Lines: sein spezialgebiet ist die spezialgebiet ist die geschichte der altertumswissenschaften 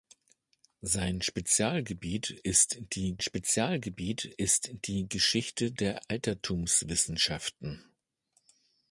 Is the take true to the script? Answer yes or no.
yes